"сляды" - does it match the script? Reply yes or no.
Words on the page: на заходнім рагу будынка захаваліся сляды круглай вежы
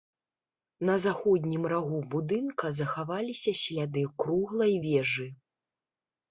yes